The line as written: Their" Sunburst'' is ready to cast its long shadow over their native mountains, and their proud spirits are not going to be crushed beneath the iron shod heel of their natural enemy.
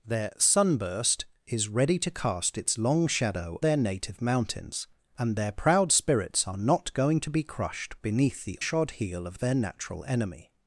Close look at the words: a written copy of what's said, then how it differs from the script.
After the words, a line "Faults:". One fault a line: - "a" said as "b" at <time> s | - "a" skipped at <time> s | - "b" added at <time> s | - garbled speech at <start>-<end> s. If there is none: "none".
Their" Sunburst'' is ready to cast its long shadow their native mountains, and their proud spirits are not going to be crushed beneath the shod heel of their natural enemy.
Faults:
- "over" skipped at 3.6 s
- "iron" skipped at 8.6 s